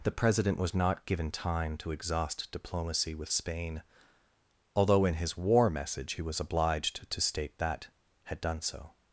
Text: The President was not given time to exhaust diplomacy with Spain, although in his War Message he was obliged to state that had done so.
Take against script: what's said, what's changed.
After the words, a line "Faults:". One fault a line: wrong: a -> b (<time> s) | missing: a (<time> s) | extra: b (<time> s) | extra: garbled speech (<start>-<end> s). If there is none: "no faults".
The President was not given time to exhaust diplomacy with Spain, although in his War Message he was obliged to state that had done so.
Faults:
no faults